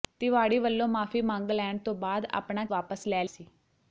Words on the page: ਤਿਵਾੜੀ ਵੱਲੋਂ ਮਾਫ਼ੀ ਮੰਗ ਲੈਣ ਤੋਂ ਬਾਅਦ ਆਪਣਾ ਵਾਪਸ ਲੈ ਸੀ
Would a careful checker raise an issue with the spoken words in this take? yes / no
no